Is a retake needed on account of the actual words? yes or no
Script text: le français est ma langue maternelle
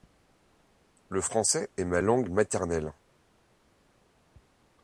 no